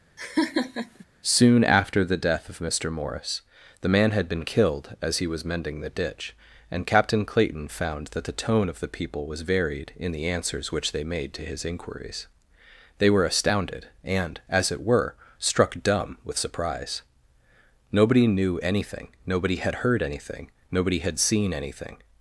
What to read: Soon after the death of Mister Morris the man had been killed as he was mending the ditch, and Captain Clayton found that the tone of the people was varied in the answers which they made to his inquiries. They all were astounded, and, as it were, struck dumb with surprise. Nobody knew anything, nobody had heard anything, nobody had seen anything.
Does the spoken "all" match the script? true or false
false